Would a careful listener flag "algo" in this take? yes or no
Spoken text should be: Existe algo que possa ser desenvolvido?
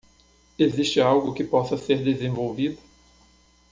no